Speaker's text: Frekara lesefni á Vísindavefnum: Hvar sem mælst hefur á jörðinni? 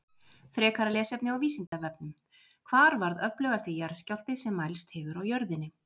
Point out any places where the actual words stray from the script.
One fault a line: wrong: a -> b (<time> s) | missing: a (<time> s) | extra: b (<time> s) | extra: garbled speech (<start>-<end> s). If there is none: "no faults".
extra: varð öflugasti jarðskjálfti (3.0 s)